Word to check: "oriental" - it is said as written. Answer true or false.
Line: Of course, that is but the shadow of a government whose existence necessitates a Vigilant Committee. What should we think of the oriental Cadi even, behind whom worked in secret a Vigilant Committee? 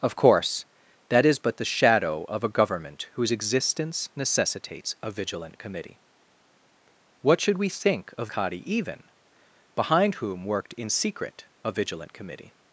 false